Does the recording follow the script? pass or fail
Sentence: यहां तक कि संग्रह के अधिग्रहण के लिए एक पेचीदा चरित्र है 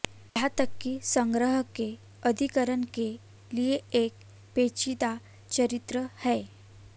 pass